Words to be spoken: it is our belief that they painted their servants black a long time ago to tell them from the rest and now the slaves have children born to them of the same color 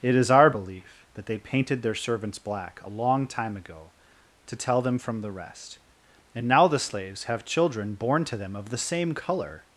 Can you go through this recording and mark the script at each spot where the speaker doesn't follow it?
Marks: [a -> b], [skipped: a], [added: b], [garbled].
it is our belief that they painted their servants black a long time ago to tell them from the rest and now the slaves have children born to them of the same color